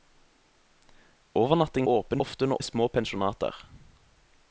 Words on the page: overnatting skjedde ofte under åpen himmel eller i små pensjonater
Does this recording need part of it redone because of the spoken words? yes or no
yes